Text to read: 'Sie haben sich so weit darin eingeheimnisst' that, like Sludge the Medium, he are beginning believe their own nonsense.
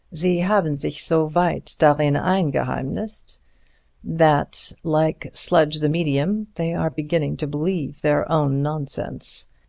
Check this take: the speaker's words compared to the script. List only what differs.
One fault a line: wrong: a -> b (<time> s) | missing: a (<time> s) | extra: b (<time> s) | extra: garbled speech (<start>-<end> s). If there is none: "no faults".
wrong: he -> they (6.5 s)
extra: to (7.4 s)